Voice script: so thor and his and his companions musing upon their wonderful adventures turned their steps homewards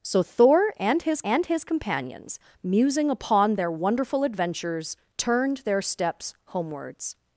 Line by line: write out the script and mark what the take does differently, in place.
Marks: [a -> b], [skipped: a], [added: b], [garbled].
so thor and his and his companions musing upon their wonderful adventures turned their steps homewards